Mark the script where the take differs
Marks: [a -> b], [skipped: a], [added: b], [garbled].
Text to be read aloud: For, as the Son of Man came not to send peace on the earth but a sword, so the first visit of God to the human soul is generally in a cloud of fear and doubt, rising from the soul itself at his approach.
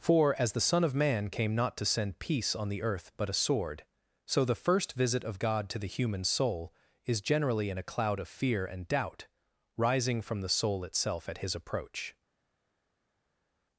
For, as the Son of Man came not to send peace on the earth but a sword, so the first visit of God to the human soul is generally in a cloud of fear and doubt, rising from the soul itself at his approach.